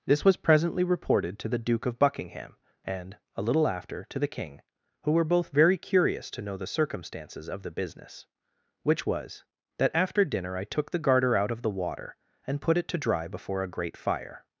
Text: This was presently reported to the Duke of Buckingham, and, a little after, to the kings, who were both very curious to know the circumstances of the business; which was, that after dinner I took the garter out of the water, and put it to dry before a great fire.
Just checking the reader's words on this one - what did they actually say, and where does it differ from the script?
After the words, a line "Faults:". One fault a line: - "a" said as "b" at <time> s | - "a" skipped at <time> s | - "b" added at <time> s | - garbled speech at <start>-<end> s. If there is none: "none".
This was presently reported to the Duke of Buckingham, and, a little after, to the king, who were both very curious to know the circumstances of the business; which was, that after dinner I took the garter out of the water, and put it to dry before a great fire.
Faults:
- "kings" said as "king" at 4.3 s